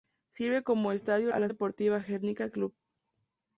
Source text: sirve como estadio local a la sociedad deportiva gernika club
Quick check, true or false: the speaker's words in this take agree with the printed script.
false